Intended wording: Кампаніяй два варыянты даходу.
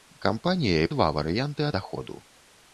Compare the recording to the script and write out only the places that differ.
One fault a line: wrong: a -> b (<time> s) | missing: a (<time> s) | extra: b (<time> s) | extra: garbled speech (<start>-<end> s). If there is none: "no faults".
no faults